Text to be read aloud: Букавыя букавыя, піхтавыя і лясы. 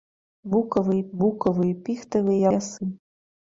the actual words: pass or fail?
pass